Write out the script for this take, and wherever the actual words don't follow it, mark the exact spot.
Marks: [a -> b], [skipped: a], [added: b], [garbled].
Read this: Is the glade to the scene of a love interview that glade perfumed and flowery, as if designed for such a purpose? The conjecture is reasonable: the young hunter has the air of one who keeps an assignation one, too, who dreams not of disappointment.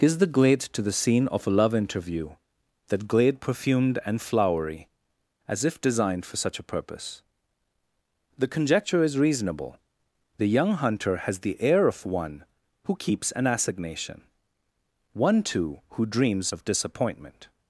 Is the glade to the scene of a love interview that glade perfumed and flowery, as if designed for such a purpose? The conjecture is reasonable: the young hunter has the air of one who keeps an assignation one, too, who dreams [skipped: not] of disappointment.